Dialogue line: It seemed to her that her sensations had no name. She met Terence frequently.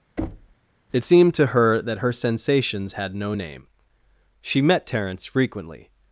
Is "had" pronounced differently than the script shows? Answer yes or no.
no